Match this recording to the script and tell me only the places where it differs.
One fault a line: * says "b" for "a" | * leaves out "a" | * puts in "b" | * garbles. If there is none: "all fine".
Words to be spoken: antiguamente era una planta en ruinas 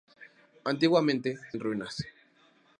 * leaves out "era una planta"